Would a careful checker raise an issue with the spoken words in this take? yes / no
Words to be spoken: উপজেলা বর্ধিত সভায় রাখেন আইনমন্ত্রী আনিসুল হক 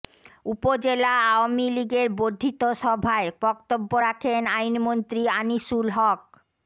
yes